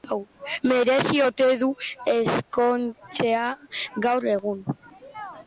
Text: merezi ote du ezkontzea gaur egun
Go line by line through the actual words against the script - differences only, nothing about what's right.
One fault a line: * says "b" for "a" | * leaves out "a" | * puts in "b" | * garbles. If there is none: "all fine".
all fine